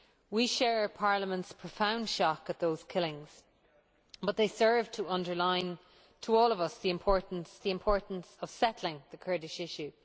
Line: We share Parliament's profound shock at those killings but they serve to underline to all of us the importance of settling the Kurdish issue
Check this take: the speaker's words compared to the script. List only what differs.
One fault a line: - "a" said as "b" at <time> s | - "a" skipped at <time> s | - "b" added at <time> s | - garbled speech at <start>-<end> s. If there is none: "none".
- "the importance" added at 7.6 s